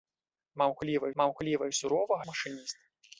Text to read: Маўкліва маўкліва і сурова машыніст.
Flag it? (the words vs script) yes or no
no